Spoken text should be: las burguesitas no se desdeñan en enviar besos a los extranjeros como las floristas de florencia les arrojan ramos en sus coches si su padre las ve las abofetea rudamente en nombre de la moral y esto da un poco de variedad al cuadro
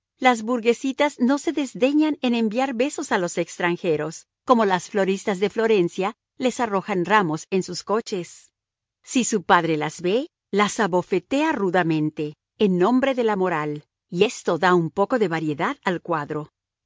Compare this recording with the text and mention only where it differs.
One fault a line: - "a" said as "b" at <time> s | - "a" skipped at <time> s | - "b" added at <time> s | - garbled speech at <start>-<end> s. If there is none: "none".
none